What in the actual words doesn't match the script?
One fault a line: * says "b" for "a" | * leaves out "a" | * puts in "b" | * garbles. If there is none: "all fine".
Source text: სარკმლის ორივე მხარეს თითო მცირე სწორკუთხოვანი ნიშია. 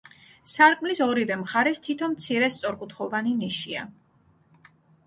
all fine